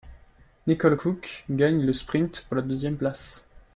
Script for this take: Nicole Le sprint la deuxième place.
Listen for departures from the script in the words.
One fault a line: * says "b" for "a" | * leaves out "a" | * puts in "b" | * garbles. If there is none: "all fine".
* puts in "Cooke gagne"
* puts in "pour"